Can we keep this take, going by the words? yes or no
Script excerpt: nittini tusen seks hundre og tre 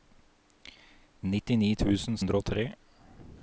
no